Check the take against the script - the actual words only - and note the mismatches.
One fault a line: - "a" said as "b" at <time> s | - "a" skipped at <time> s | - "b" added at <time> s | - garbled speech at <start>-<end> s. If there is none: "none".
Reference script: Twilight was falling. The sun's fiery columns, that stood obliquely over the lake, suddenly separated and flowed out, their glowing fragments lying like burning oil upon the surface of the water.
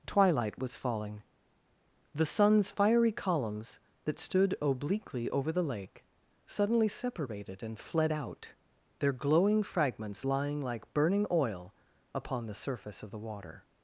- "flowed" said as "fled" at 7.8 s